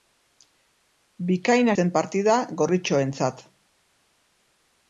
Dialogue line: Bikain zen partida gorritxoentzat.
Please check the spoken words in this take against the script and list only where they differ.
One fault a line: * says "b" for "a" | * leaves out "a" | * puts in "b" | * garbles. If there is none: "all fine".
all fine